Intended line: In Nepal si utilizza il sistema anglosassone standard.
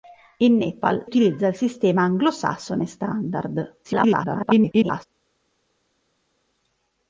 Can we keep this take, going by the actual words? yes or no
no